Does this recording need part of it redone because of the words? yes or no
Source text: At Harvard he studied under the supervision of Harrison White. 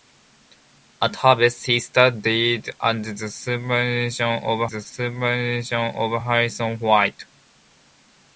yes